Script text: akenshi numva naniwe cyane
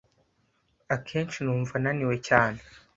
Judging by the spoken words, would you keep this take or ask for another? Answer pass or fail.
pass